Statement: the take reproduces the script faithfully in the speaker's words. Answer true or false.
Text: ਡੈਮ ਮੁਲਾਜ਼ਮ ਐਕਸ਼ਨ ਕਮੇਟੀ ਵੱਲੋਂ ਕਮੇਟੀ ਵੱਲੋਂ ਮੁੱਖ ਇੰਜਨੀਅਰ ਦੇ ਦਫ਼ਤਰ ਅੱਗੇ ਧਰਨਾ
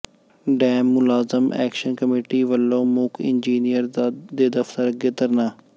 false